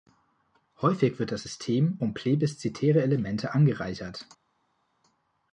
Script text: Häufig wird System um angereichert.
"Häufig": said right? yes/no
yes